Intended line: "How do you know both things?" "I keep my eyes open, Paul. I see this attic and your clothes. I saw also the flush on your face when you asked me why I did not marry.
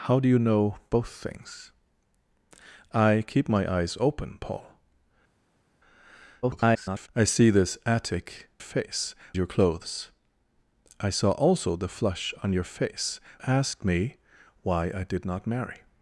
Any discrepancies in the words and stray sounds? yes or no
yes